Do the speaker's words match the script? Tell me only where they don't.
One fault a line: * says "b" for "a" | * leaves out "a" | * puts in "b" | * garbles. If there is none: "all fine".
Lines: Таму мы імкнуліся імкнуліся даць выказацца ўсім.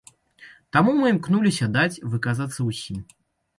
* leaves out "імкнуліся"